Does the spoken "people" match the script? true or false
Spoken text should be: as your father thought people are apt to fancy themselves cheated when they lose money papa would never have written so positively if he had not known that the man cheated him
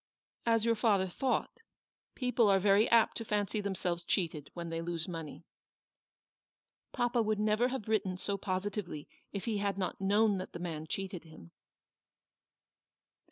true